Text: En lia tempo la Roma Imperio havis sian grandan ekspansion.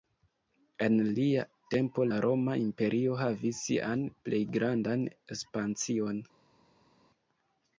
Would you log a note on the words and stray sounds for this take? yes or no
yes